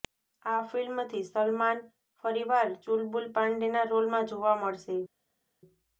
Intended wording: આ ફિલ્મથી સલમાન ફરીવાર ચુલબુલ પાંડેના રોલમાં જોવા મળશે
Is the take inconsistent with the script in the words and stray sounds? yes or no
no